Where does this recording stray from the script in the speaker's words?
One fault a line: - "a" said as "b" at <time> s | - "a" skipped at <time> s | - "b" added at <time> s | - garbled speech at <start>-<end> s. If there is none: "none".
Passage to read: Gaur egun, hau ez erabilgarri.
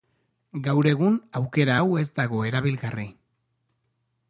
- "aukera" added at 1.4 s
- "dago" added at 2.2 s